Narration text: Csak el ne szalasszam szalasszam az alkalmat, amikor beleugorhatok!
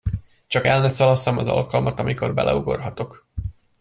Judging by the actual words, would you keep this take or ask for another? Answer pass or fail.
fail